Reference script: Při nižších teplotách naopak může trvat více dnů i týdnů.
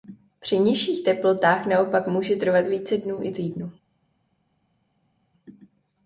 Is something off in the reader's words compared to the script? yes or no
no